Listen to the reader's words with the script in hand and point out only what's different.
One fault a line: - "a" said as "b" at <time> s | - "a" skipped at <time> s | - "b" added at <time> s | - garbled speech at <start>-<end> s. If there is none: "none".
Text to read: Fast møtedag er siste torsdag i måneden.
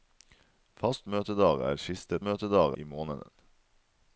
- "torsdag" said as "møtedag" at 2.3 s